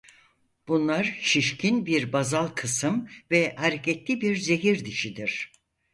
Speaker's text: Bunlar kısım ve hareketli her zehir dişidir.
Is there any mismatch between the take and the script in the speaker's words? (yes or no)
yes